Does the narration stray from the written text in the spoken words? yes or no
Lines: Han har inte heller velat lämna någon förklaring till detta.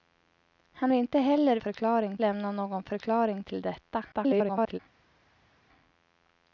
yes